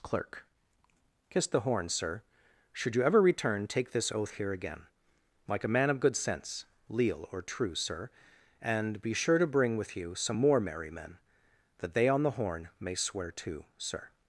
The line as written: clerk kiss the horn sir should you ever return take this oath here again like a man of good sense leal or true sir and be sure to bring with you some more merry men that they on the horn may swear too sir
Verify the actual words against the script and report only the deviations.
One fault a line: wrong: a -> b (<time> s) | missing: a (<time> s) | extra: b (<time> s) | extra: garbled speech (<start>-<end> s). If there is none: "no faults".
no faults